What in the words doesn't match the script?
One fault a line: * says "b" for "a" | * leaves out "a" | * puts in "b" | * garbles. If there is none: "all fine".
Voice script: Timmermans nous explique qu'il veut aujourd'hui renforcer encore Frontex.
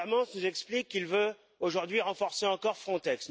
all fine